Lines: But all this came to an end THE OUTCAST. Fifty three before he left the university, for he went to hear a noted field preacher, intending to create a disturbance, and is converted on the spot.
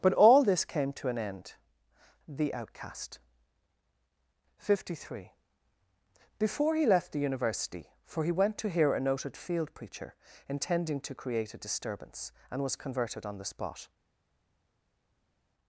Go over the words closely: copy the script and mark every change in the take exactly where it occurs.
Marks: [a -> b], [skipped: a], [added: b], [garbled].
But all this came to an end THE OUTCAST. Fifty three before he left the university, for he went to hear a noted field preacher, intending to create a disturbance, and [is -> was] converted on the spot.